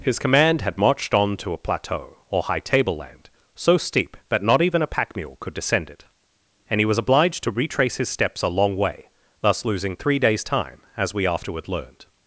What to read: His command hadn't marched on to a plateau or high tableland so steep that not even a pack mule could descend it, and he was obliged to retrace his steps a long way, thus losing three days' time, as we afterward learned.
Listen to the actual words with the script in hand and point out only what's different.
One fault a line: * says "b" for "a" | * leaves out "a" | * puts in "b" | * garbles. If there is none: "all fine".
* says "had" for "hadn't"